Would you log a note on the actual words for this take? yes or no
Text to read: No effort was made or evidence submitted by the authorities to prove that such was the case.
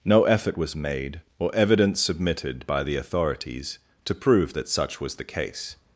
no